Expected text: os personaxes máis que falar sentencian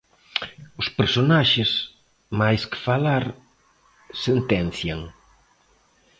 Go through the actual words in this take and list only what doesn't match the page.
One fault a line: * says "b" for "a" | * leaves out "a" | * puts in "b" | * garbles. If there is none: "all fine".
all fine